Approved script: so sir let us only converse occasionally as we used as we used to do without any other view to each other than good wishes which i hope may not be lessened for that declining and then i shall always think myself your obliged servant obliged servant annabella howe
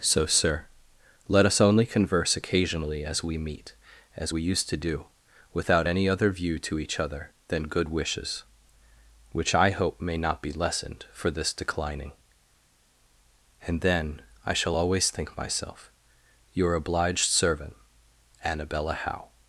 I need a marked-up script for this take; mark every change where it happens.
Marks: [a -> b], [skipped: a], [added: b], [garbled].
so sir let us only converse occasionally as we [used -> meet] as we used to do without any other view to each other than good wishes which i hope may not be lessened for [that -> this] declining and then i shall always think myself your obliged servant [skipped: obliged servant] annabella howe